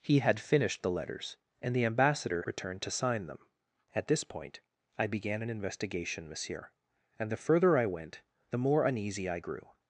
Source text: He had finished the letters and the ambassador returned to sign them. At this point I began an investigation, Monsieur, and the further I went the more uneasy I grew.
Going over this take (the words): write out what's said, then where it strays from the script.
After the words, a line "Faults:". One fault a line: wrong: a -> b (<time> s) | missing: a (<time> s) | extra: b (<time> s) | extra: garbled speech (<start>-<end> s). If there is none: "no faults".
He had finished the letters and the ambassador returned to sign them. At this point I began an investigation, Monsieur, and the further I went the more uneasy I grew.
Faults:
no faults